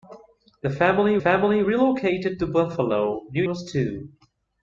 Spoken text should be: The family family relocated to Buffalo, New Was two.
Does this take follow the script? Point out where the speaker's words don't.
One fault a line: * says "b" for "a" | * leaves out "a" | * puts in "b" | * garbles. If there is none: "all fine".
all fine